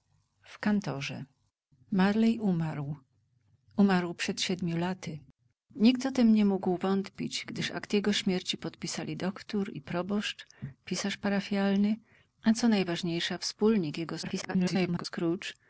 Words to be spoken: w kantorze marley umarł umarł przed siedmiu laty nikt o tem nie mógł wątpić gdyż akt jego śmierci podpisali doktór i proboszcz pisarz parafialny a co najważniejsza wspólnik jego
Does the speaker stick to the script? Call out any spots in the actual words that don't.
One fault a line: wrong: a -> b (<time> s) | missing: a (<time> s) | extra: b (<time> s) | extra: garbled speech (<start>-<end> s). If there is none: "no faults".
extra: garbled speech (14.2-15.1 s)